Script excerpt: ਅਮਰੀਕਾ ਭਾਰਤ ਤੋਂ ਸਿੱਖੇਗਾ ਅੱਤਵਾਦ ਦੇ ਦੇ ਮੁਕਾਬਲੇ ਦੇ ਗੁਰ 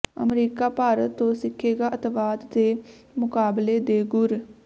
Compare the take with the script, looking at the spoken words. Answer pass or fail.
fail